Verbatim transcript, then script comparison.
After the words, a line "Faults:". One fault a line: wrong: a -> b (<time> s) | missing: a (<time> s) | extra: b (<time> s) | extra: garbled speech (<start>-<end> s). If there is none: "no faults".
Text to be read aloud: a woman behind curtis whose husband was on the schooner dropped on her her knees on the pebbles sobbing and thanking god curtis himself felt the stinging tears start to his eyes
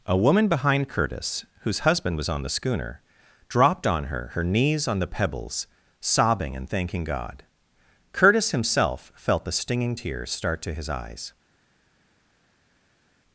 a woman behind curtis whose husband was on the schooner dropped on her her knees on the pebbles sobbing and thanking god curtis himself felt the stinging tears start to his eyes
Faults:
no faults